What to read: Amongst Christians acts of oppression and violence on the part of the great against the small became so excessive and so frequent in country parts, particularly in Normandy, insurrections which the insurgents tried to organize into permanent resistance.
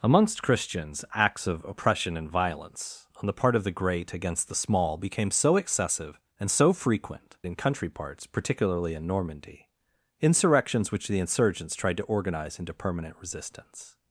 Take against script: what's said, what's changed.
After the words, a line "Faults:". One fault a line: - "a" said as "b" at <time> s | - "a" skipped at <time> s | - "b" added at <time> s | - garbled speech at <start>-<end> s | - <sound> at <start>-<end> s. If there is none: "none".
Amongst Christians acts of oppression and violence on the part of the great against the small became so excessive and so frequent in country parts, particularly in Normandy, insurrections which the insurgents tried to organize into permanent resistance.
Faults:
none